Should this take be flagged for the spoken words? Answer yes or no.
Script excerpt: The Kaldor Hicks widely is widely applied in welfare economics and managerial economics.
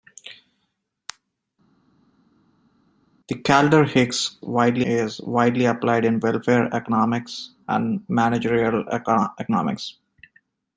no